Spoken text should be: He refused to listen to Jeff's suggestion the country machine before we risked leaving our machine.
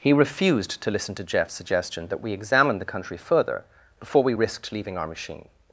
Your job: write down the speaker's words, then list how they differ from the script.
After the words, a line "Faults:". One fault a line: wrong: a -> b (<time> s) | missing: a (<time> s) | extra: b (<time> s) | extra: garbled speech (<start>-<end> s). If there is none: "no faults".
He refused to listen to Jeff's suggestion that we examine the country further before we risked leaving our machine.
Faults:
extra: that we examine (2.1 s)
wrong: machine -> further (3.2 s)